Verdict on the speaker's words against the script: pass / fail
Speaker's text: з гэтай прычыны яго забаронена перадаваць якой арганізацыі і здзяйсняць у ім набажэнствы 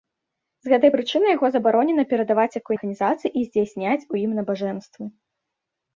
pass